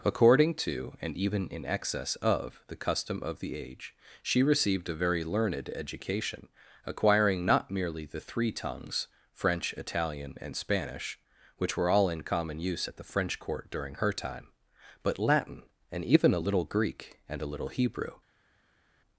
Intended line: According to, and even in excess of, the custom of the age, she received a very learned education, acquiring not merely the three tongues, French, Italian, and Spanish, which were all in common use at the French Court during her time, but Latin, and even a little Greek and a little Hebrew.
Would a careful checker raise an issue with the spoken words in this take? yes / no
no